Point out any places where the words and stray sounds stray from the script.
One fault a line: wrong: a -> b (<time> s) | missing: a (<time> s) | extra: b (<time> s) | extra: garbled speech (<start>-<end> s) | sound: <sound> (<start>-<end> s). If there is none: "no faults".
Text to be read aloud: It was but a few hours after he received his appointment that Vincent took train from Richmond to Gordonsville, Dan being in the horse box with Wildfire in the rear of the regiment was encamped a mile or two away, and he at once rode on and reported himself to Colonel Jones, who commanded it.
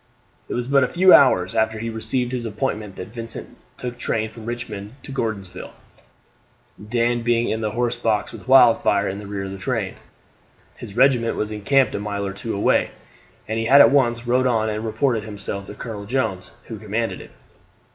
extra: train His (9.6 s)